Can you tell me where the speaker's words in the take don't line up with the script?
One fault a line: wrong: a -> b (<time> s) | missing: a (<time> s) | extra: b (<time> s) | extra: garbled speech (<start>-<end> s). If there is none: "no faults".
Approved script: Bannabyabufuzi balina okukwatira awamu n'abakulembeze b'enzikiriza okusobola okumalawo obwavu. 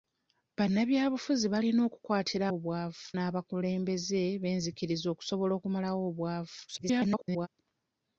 wrong: awamu -> obwavu (2.6 s)
extra: garbled speech (6.7-7.5 s)